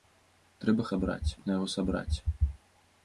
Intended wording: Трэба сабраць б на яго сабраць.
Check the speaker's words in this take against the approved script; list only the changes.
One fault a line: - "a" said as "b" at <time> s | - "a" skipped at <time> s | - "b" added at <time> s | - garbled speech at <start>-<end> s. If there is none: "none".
none